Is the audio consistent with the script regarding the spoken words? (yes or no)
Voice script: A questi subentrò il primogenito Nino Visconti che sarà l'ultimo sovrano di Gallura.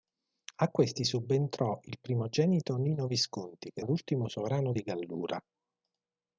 no